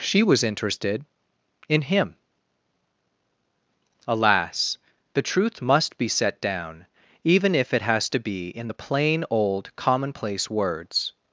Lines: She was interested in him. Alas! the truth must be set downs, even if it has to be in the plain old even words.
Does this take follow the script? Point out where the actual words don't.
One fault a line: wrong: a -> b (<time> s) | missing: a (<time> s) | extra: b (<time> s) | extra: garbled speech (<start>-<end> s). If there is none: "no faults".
wrong: downs -> down (6.4 s)
wrong: even -> commonplace (9.7 s)